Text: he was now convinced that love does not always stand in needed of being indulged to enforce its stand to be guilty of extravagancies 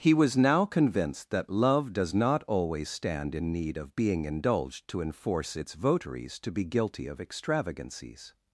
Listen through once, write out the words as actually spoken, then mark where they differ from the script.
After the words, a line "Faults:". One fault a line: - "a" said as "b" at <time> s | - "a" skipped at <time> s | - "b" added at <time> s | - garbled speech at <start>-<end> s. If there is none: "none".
he was now convinced that love does not always stand in need of being indulged to enforce its votaries to be guilty of extravagancies
Faults:
- "needed" said as "need" at 3.5 s
- "stand" said as "votaries" at 5.8 s